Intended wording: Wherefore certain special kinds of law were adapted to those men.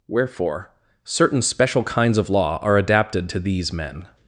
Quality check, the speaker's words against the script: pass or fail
fail